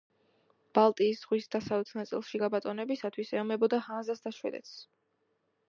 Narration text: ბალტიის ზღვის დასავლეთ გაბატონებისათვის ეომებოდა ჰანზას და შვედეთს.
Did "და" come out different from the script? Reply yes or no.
no